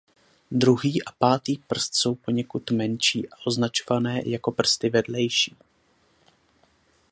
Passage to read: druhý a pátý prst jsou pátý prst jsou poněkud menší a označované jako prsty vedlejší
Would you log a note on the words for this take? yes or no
yes